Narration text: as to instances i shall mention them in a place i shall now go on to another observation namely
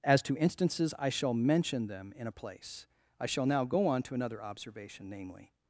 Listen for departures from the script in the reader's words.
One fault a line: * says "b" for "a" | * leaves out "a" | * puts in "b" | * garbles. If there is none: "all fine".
all fine